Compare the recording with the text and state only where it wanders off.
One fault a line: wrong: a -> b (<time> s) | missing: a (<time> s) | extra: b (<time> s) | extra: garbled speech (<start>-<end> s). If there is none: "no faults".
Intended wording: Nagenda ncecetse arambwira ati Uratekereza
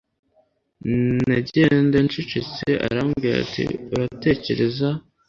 no faults